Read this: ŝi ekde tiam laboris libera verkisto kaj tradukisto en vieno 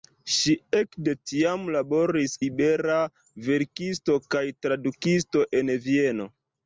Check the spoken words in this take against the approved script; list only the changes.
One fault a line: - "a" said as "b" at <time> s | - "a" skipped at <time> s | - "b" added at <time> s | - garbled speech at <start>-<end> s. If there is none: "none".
none